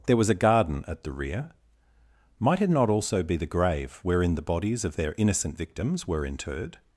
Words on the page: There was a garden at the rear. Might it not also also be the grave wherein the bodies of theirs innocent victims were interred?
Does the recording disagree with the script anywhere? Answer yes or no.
yes